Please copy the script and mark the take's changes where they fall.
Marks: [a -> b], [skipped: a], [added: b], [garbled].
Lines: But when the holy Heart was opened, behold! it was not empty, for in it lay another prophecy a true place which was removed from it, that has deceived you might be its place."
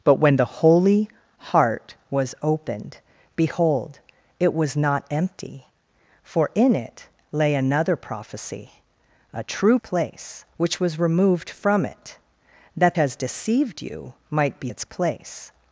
But when the holy Heart was opened, behold! it was not empty, for in it lay another prophecy a true place which was removed from it, that has deceived you might be its place."